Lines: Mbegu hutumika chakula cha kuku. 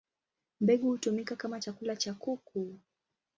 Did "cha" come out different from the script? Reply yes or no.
no